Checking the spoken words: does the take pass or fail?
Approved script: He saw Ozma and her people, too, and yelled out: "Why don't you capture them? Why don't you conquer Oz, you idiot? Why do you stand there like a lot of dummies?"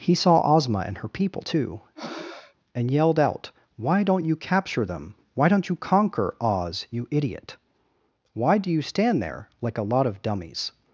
pass